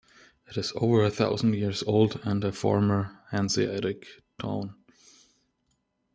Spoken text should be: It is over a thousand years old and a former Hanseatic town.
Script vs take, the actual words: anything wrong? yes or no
no